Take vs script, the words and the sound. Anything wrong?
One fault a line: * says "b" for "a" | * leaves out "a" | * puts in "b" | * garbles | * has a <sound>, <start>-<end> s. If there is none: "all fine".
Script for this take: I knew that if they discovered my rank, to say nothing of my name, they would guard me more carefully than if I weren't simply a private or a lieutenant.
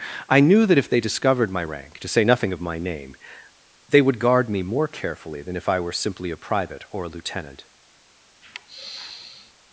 * says "were" for "weren't"
* has a sigh, 8.4-9.5 s